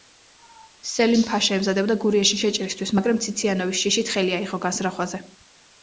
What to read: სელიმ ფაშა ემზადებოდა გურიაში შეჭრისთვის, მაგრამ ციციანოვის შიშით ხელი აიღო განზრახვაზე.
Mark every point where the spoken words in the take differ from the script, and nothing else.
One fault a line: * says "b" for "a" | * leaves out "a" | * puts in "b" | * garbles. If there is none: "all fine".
all fine